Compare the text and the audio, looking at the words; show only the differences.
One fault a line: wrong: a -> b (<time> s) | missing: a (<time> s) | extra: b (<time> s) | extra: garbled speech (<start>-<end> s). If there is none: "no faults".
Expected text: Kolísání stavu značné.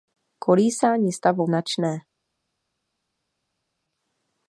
no faults